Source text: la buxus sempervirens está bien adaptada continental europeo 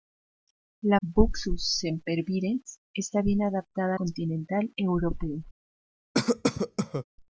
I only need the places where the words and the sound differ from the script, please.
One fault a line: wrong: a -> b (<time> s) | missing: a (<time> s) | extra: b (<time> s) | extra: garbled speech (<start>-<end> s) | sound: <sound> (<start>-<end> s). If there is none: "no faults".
sound: cough (6.1-7.0 s)